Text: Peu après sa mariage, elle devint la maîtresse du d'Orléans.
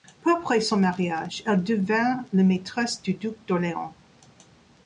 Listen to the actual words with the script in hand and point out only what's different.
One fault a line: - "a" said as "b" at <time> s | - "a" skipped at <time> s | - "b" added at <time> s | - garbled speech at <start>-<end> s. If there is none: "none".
- "sa" said as "son" at 0.6 s
- "duc" added at 3.1 s